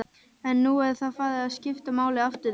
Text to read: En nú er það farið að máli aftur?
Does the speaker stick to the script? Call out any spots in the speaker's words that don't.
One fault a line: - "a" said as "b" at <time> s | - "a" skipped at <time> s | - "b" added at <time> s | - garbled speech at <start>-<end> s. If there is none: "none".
- "skipta" added at 1.6 s